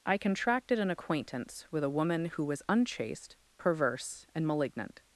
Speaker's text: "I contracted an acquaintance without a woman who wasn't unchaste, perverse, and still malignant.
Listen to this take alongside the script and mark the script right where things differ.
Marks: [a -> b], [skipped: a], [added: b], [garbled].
"I contracted an acquaintance [without -> with] a woman who [wasn't -> was] unchaste, perverse, and [skipped: still] malignant.